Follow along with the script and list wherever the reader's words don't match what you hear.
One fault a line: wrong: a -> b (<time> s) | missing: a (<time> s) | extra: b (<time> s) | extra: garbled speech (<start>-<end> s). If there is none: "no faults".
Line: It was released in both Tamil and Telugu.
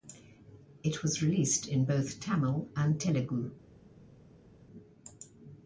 no faults